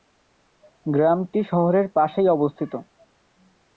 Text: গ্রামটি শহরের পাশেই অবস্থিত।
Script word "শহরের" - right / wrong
right